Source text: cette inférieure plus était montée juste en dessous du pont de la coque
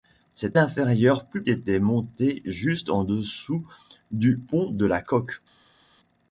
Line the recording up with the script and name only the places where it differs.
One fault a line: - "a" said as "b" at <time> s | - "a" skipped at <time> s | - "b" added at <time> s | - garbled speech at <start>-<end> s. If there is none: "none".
none